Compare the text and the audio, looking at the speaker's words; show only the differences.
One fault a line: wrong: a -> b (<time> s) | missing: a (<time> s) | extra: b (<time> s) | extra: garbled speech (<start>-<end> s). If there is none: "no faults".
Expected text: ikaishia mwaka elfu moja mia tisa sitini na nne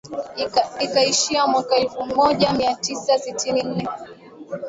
missing: na (3.6 s)